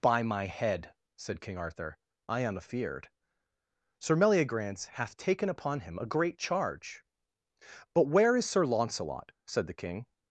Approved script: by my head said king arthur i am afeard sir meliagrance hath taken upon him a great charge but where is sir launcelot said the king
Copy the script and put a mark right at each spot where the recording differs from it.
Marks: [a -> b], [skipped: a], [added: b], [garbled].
by my head said king arthur i am afeard sir meliagrance hath taken upon him a great charge but where is sir launcelot said the king